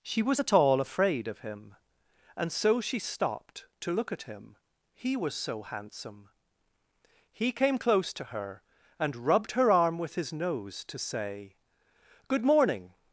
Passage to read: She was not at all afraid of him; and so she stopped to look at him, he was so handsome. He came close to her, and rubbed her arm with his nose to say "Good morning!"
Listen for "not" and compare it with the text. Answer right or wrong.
wrong